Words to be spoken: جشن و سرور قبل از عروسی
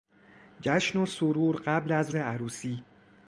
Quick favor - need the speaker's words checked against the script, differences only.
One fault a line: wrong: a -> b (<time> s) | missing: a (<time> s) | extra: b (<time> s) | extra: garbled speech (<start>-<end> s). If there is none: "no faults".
no faults